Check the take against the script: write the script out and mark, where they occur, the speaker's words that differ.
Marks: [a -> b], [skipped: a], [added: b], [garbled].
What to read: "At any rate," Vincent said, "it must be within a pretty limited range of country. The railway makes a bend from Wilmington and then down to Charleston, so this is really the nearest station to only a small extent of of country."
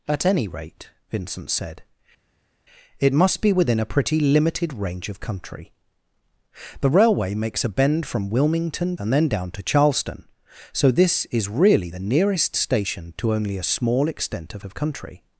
"At any rate," Vincent said, "it must be within a pretty limited range of country. The railway makes a bend from Wilmington and then down to Charleston, so this is really the nearest station to only a small extent of of country."